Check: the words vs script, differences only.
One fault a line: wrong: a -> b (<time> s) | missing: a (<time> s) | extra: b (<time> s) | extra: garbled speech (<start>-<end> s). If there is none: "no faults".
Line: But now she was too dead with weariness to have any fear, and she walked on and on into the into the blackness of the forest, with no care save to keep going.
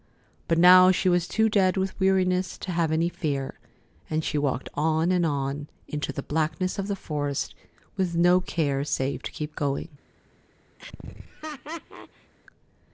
missing: into the (6.2 s)